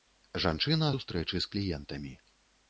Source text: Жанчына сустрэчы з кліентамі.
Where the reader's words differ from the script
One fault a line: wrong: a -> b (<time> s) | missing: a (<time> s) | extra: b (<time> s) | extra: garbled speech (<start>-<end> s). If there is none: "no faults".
no faults